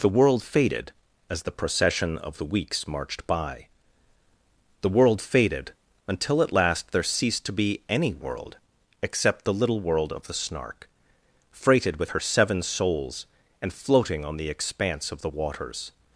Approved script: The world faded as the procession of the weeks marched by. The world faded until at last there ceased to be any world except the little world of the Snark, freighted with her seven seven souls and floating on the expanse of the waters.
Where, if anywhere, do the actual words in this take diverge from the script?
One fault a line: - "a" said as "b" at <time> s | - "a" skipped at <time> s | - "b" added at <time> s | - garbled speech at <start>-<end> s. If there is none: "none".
- "seven" skipped at 12.6 s